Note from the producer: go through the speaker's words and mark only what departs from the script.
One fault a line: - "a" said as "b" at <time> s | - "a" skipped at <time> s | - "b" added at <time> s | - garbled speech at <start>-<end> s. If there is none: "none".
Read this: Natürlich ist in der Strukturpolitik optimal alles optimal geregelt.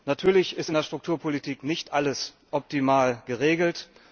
- "optimal" said as "nicht" at 1.6 s